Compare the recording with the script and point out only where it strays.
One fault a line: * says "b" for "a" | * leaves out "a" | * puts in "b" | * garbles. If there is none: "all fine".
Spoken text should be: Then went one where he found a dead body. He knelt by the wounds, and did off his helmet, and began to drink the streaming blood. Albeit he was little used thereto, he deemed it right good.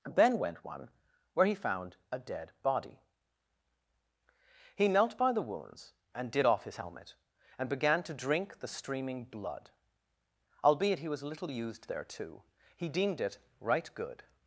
all fine